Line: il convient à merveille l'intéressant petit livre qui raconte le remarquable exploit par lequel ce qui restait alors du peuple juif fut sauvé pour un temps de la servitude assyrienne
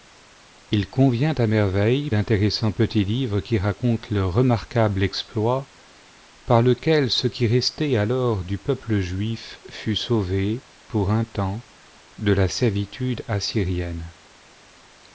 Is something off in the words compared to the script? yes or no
no